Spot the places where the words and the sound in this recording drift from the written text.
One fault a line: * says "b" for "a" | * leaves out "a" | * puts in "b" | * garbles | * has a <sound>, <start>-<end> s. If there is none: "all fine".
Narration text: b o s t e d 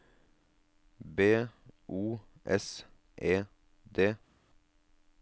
* leaves out "t"